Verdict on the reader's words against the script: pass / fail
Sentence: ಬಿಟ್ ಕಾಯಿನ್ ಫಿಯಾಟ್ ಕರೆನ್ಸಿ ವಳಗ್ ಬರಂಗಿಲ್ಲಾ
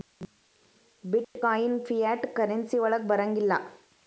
pass